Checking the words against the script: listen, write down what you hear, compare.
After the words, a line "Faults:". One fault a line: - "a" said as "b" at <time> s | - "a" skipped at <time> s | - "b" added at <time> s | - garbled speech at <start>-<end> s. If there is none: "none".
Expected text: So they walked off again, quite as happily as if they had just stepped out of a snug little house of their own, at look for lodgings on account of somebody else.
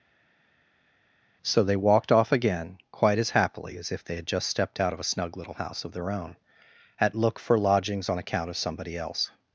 So they walked off again, quite as happily as if they had just stepped out of a snug little house of their own, at look for lodgings on account of somebody else.
Faults:
none